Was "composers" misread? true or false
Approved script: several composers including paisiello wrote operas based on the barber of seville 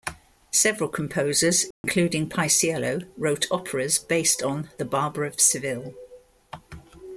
false